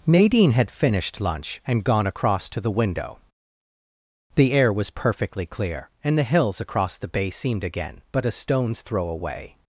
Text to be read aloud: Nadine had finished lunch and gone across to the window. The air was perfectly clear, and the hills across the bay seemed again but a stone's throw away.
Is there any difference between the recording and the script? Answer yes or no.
no